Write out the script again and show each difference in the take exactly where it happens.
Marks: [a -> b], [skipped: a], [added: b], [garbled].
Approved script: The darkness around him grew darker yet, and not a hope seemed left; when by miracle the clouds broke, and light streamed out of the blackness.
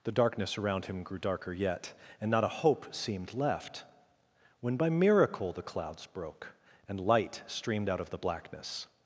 The darkness around him grew darker yet, and not a hope seemed left; when by miracle the clouds broke, and light streamed out of the blackness.